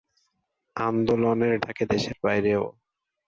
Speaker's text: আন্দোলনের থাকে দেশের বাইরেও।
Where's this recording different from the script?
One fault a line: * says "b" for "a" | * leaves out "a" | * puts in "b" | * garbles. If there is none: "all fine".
all fine